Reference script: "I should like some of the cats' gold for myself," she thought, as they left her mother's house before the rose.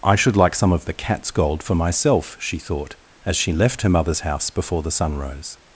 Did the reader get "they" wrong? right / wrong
wrong